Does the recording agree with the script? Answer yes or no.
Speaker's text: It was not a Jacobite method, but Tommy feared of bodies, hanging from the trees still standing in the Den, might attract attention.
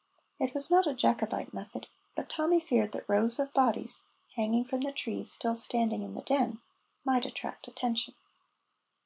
no